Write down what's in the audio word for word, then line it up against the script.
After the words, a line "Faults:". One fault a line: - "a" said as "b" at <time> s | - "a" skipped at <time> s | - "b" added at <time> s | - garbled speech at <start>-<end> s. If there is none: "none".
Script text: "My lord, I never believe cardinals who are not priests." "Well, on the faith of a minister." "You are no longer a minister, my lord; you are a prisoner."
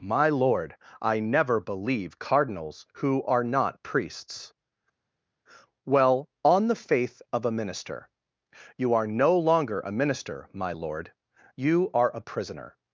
"My lord, I never believe cardinals who are not priests." "Well, on the faith of a minister." "You are no longer a minister, my lord; you are a prisoner."
Faults:
none